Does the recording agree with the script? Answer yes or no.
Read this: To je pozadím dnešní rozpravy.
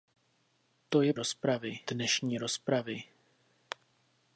no